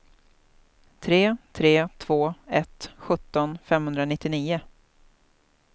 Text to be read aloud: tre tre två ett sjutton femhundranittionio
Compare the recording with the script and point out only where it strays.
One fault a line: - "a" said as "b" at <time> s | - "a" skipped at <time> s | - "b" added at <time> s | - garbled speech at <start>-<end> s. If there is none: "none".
none